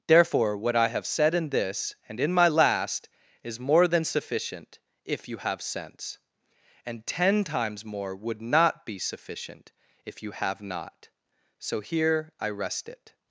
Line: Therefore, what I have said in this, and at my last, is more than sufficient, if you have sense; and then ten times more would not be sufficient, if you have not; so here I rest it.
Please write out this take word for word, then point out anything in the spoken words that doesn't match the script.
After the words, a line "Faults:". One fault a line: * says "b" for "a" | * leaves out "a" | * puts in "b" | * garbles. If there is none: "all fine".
Therefore, what I have said in this, and in my last, is more than sufficient, if you have sense; and ten times more would not be sufficient, if you have not; so here I rest it.
Faults:
* says "in" for "at"
* leaves out "then"